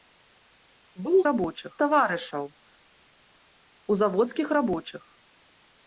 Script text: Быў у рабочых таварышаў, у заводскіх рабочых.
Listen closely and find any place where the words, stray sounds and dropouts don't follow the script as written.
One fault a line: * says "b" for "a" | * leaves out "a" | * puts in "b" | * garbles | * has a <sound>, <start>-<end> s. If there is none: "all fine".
all fine